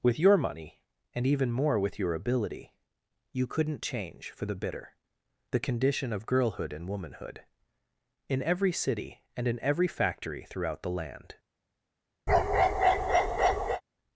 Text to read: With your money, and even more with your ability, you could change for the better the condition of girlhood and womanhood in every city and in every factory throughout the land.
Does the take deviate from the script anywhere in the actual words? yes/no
yes